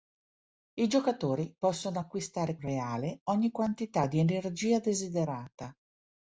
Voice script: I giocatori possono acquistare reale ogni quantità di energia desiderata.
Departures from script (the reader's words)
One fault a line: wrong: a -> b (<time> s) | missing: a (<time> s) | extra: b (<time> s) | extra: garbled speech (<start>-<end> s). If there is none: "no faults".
no faults